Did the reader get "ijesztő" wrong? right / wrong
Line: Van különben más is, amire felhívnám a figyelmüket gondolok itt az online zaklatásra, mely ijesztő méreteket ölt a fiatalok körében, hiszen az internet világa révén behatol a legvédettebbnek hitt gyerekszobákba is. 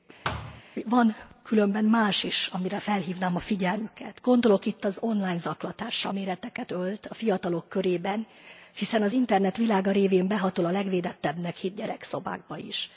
wrong